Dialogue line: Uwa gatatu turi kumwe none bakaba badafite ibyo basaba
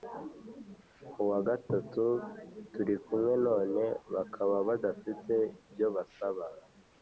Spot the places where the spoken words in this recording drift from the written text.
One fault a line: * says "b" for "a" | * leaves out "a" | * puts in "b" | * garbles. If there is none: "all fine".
all fine